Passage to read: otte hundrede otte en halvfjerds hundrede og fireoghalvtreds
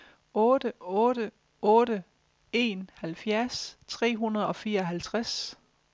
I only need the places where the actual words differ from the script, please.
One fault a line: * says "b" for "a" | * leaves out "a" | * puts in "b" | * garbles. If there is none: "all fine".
* says "otte" for "hundrede"
* puts in "tre"